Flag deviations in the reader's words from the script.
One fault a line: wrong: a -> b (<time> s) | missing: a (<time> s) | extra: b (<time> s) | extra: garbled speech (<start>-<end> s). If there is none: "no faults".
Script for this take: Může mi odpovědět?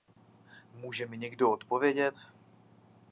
extra: někdo (1.2 s)